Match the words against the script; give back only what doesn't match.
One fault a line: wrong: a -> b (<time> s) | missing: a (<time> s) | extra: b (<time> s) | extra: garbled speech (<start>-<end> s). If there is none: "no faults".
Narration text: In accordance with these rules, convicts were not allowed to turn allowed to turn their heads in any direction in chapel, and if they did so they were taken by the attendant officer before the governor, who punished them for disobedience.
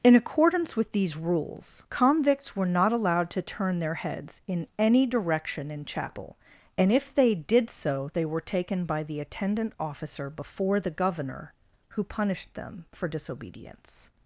missing: allowed to turn (3.8 s)